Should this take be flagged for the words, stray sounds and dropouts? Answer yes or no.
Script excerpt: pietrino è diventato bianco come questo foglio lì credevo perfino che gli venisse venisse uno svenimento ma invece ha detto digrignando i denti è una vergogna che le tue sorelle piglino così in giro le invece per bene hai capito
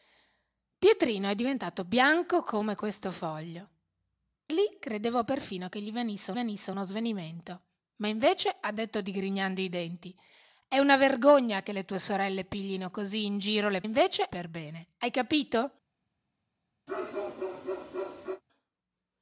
yes